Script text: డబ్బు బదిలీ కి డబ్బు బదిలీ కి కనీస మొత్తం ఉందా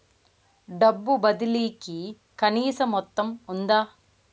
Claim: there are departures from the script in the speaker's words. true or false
true